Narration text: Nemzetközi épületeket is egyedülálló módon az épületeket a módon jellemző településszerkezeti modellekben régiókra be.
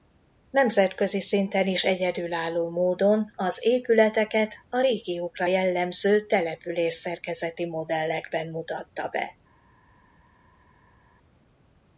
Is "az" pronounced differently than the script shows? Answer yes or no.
no